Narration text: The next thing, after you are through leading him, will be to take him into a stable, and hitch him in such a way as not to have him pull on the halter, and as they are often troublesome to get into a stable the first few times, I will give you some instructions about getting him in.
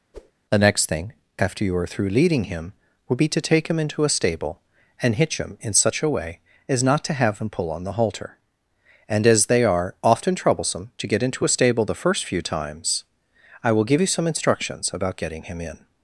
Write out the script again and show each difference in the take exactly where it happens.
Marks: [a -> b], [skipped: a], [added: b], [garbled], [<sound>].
[whoosh] The next thing, after you are through leading him, [will -> would] be to take him into a stable, and hitch him in such a way as not to have him pull on the halter, and as they are often troublesome to get into a stable the first few times, I will give you some instructions about getting him in.